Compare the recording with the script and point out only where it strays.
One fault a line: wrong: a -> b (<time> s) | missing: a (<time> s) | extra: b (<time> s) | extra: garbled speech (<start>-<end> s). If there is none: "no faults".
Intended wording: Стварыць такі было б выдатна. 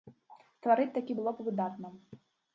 no faults